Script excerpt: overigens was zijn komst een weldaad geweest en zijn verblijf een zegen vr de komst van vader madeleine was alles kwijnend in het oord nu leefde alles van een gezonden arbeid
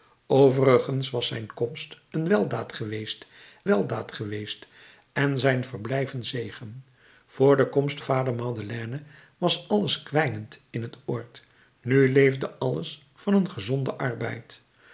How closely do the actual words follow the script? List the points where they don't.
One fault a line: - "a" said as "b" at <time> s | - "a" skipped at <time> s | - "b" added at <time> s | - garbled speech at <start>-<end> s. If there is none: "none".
- "weldaad geweest" added at 3.6 s
- "van" skipped at 8.0 s